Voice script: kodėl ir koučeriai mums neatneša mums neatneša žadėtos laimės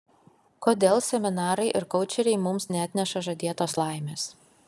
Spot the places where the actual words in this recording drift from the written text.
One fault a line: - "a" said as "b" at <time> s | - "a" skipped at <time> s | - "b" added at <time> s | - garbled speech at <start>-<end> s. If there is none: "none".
- "seminarai" added at 1.1 s
- "mums neatneša" skipped at 3.2 s